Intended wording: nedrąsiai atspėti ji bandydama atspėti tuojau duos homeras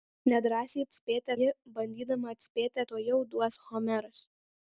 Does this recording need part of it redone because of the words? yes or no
no